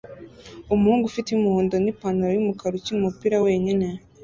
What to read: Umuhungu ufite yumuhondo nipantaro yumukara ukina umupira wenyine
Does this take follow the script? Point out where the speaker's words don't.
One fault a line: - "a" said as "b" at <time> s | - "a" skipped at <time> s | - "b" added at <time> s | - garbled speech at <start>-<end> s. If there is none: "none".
none